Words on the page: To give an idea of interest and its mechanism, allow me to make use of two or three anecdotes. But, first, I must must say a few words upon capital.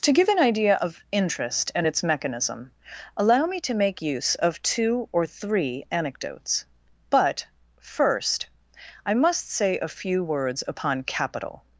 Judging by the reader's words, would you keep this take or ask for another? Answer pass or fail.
fail